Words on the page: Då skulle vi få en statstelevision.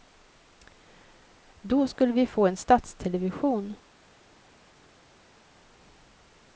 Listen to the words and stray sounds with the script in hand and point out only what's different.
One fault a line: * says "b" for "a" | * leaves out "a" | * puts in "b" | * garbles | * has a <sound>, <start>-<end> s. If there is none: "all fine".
all fine